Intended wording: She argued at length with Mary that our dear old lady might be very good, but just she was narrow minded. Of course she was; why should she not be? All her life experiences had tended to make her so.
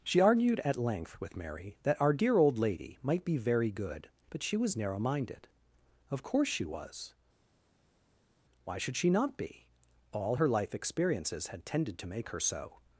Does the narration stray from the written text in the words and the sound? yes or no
yes